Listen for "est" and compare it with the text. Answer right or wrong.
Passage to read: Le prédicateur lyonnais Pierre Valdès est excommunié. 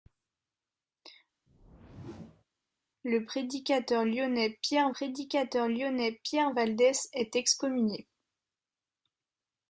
right